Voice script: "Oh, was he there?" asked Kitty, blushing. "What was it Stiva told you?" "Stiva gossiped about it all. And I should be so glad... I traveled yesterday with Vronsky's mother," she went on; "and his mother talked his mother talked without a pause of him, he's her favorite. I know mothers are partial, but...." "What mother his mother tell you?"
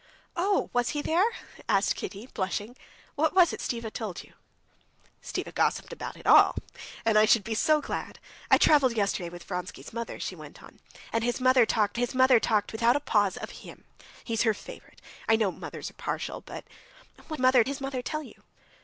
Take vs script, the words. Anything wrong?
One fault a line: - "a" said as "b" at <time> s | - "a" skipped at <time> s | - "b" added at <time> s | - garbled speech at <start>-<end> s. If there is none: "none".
none